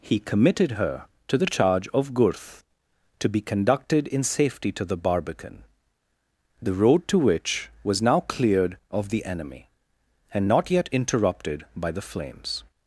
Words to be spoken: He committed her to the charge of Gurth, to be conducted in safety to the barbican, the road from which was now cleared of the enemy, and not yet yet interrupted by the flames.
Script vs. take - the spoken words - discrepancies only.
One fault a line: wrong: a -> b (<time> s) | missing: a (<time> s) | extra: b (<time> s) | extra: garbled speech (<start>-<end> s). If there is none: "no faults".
wrong: from -> to (7.1 s)
missing: yet (10.9 s)